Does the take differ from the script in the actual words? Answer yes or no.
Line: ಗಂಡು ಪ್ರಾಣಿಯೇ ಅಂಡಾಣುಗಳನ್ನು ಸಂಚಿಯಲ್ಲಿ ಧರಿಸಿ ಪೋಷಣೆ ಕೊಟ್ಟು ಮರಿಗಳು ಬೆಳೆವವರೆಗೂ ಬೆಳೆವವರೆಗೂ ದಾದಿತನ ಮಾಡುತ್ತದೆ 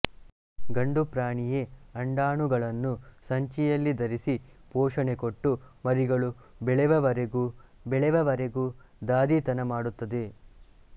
no